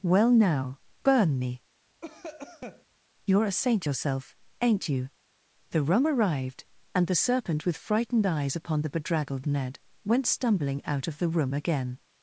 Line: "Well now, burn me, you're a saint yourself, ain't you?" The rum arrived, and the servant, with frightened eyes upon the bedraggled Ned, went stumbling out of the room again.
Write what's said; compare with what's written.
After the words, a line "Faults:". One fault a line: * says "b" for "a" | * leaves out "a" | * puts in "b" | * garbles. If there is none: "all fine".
"Well now, burn me, you're a saint yourself, ain't you?" The rum arrived, and the serpent, with frightened eyes upon the bedraggled Ned, went stumbling out of the room again.
Faults:
* says "serpent" for "servant"